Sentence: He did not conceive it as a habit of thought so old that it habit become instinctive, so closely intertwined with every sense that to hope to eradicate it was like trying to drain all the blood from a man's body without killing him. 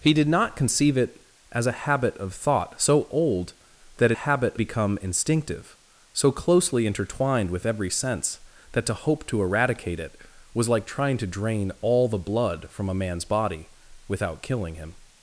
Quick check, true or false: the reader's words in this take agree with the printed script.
true